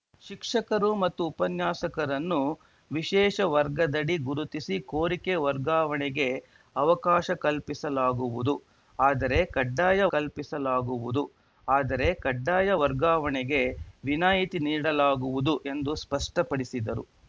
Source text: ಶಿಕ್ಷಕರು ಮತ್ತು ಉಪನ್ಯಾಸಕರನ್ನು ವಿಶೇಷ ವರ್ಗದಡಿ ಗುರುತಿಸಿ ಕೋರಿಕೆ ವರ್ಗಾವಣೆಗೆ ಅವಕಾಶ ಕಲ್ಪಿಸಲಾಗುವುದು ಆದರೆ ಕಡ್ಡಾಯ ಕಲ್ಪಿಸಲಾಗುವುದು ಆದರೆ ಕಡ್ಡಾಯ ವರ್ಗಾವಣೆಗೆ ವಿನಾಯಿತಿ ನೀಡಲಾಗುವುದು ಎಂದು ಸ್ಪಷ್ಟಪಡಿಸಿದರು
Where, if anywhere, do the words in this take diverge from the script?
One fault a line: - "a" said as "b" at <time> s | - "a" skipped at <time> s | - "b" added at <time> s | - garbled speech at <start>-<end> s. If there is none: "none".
none